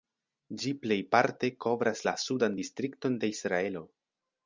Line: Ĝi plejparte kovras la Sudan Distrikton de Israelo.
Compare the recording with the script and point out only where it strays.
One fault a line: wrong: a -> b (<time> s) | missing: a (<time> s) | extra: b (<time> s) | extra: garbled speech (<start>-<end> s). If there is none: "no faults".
no faults